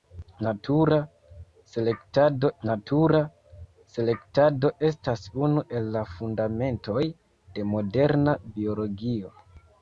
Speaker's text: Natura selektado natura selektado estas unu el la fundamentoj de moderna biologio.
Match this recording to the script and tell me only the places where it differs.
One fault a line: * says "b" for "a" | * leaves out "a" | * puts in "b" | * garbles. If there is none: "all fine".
all fine